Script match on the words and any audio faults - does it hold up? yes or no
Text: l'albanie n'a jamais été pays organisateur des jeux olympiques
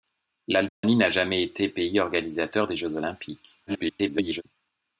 no